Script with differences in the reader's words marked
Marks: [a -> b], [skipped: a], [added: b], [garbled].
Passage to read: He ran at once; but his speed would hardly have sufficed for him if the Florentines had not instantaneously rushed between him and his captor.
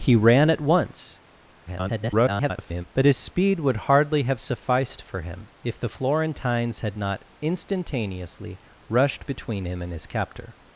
He ran at once; [garbled] but his speed would hardly have sufficed for him if the Florentines had not instantaneously rushed between him and his captor.